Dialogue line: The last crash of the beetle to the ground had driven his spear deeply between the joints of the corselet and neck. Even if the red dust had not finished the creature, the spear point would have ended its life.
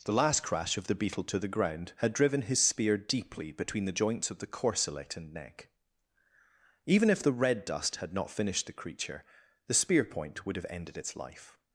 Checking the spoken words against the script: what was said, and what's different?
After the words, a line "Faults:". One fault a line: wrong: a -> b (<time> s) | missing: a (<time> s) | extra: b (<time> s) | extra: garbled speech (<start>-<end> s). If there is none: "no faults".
The last crash of the beetle to the ground had driven his spear deeply between the joints of the corselet and neck. Even if the red dust had not finished the creature, the spear point would have ended its life.
Faults:
no faults